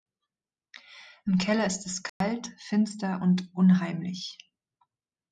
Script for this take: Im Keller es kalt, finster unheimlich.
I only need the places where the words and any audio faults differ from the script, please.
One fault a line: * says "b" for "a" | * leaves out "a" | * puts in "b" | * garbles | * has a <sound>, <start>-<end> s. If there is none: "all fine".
* puts in "ist"
* has a dropout, 2.1-2.2 s
* puts in "und"